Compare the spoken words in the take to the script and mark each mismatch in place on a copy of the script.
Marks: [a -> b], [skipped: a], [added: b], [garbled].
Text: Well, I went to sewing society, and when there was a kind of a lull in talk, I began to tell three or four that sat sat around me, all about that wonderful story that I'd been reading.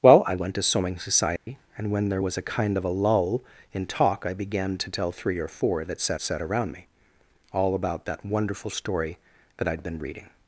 Well, I went to sewing society, and when there was a kind of a lull in talk, I began to tell three or four that sat sat around me, all about that wonderful story that I'd been reading.